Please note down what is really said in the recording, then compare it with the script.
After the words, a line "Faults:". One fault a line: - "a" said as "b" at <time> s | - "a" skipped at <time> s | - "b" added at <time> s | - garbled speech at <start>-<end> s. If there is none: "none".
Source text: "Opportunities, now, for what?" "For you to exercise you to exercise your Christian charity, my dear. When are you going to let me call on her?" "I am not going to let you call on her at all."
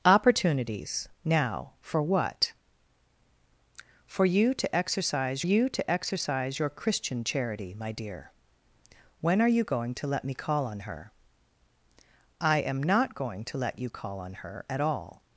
"Opportunities, now, for what?" "For you to exercise you to exercise your Christian charity, my dear. When are you going to let me call on her?" "I am not going to let you call on her at all."
Faults:
none